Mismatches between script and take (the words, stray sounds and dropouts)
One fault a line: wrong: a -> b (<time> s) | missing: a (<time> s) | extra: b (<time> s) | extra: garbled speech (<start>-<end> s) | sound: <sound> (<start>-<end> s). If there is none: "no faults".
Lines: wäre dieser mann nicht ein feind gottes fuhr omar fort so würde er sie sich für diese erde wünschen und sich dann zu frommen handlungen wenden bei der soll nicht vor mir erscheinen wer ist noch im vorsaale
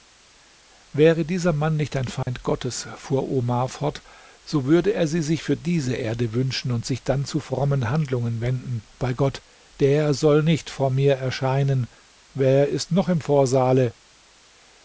sound: dropout (2.2-2.3 s)
extra: gott (9.1 s)